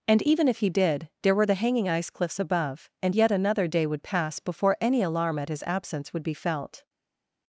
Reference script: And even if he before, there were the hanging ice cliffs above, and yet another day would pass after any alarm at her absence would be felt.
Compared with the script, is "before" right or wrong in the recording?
wrong